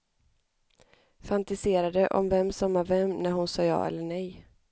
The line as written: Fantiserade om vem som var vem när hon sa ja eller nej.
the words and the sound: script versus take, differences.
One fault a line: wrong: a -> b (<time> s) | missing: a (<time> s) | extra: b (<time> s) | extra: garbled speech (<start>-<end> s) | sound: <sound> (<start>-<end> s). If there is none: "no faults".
no faults